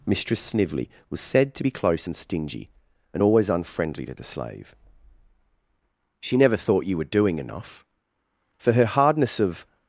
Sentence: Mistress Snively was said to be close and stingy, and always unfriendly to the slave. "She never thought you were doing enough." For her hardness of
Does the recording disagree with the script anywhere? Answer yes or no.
no